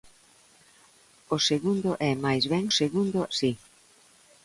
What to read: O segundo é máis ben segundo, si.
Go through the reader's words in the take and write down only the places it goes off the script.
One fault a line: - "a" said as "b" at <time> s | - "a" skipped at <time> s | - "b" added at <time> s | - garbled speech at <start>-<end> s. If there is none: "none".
none